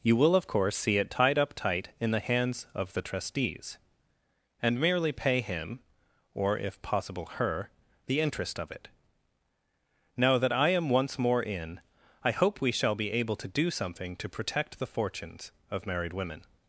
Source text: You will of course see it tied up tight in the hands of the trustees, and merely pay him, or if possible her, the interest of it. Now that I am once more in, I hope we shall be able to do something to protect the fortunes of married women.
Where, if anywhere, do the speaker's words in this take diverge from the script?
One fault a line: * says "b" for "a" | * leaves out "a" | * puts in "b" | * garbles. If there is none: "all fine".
all fine